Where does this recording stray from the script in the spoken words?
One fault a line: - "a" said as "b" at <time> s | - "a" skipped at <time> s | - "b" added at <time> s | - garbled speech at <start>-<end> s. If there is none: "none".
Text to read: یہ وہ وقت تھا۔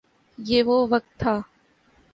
none